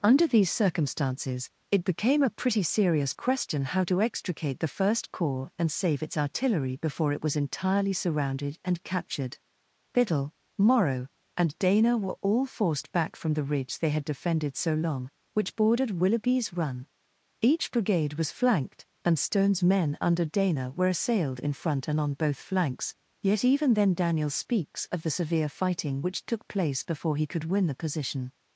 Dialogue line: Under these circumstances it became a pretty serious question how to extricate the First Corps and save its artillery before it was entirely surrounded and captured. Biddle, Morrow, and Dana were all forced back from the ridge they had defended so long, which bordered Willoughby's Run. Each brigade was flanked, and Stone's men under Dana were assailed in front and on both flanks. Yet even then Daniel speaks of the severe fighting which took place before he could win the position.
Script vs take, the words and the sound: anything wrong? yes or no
no